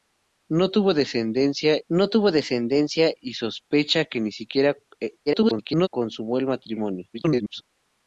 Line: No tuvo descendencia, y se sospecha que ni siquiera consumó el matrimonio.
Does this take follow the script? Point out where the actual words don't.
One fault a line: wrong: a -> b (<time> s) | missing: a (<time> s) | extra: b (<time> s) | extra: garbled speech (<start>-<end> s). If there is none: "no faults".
extra: no tuvo descendencia (1.9 s)
extra: garbled speech (5.3-5.9 s)
extra: garbled speech (7.1-7.6 s)